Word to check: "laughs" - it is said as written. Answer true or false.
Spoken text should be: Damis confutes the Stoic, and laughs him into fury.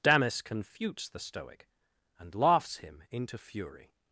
true